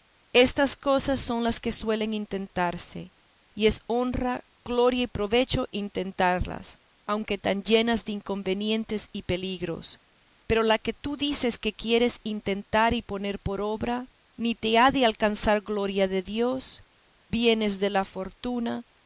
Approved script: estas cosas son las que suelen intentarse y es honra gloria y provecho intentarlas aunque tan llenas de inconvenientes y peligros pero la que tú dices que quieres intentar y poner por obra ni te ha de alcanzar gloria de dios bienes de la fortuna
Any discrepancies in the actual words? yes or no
no